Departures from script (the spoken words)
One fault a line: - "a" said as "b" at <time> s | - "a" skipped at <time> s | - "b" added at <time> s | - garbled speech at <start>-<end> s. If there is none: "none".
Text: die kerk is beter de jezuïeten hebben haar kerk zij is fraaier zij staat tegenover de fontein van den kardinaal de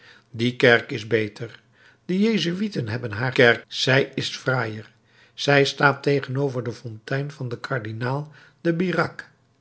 none